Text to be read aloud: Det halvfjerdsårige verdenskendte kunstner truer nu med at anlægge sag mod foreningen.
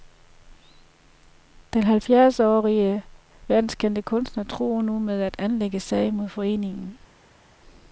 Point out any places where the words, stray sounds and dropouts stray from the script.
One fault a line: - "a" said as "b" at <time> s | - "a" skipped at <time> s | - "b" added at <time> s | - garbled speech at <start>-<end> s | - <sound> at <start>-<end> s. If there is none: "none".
- "Det" said as "Den" at 1.7 s